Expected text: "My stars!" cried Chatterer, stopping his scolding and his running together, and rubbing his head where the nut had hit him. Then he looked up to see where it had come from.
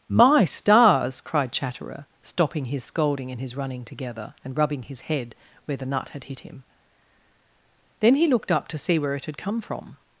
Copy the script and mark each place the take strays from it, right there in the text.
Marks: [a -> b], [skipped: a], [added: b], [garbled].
"My stars!" cried Chatterer, stopping his scolding and his running together, and rubbing his head where the nut had hit him. Then he looked up to see where it had come from.